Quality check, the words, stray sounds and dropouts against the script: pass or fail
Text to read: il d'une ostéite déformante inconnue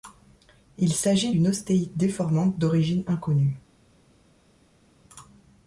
fail